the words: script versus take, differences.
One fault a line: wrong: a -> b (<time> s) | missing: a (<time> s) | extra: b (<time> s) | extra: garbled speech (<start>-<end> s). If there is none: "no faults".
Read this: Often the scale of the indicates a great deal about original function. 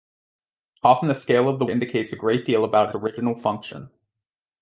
no faults